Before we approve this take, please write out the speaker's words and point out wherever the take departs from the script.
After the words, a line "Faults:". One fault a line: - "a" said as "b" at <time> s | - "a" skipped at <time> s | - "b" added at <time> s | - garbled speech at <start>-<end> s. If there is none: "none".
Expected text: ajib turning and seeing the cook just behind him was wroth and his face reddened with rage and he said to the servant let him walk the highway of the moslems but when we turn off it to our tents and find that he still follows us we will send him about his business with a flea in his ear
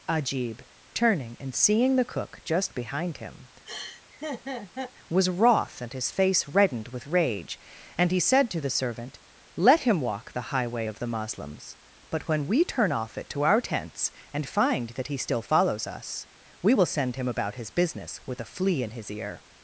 ajib turning and seeing the cook just behind him was wroth and his face reddened with rage and he said to the servant let him walk the highway of the moslems but when we turn off it to our tents and find that he still follows us we will send him about his business with a flea in his ear
Faults:
none